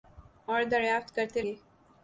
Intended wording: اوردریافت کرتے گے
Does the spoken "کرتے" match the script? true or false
true